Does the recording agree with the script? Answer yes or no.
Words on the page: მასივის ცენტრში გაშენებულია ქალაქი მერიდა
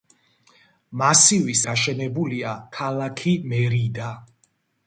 no